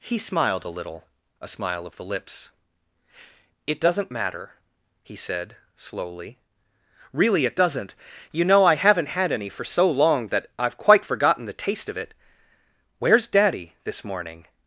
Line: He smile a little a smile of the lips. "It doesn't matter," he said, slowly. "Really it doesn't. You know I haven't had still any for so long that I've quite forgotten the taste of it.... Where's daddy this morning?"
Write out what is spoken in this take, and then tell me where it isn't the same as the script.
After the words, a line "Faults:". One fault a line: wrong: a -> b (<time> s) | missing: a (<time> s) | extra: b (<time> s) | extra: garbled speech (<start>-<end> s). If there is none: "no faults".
He smiled a little a smile of the lips. "It doesn't matter," he said, slowly. "Really it doesn't. You know I haven't had any for so long that I've quite forgotten the taste of it.... Where's daddy this morning?"
Faults:
wrong: smile -> smiled (0.2 s)
missing: still (9.3 s)